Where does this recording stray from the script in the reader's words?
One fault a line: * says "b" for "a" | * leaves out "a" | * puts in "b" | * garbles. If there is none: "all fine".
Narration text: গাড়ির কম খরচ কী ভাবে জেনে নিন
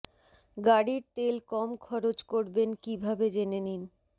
* puts in "তেল"
* puts in "করবেন"